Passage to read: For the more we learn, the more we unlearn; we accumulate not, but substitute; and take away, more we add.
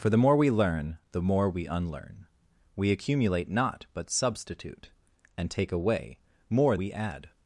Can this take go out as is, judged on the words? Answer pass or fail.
pass